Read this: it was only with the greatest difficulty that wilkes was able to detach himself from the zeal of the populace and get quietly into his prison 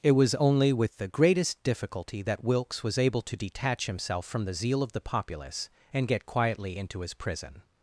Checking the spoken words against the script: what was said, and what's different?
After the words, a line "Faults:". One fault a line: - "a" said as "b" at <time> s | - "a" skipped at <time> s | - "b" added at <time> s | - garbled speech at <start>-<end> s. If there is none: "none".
it was only with the greatest difficulty that wilkes was able to detach himself from the zeal of the populace and get quietly into his prison
Faults:
none